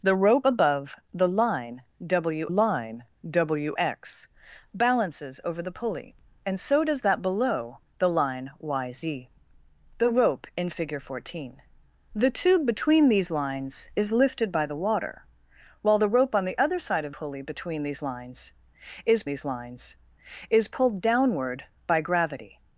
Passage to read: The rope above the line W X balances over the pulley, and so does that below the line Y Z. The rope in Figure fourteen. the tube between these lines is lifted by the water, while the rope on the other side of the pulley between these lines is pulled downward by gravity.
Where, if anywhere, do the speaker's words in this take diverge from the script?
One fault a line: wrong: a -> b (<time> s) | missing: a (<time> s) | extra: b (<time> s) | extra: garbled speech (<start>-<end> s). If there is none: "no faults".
extra: line W (2.5 s)
missing: the (17.1 s)
extra: these lines is (19.2 s)